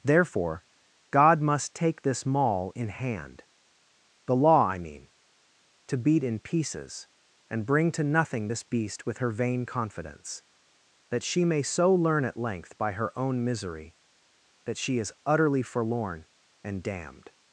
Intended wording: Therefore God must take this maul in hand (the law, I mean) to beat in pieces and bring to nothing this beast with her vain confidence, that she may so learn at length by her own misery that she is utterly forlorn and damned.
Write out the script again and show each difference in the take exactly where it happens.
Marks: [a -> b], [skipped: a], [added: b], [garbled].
Therefore God must take this maul in hand (the law, I mean) to beat in pieces and bring to nothing this beast with her vain confidence, that she may so learn at length by her own misery that she is utterly forlorn and damned.